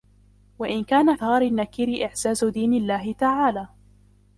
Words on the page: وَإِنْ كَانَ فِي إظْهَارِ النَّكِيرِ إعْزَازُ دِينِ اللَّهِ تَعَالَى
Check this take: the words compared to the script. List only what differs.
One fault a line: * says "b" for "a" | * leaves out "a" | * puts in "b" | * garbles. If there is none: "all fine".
* leaves out "فِي"